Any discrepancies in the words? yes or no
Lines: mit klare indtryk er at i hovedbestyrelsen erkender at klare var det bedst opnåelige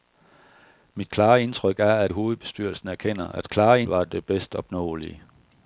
no